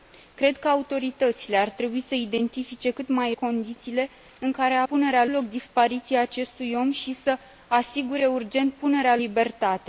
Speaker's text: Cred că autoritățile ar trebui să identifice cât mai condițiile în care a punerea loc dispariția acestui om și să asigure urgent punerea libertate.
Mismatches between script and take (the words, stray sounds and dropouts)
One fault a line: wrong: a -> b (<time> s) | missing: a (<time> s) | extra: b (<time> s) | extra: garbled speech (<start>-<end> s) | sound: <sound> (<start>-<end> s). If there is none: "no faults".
no faults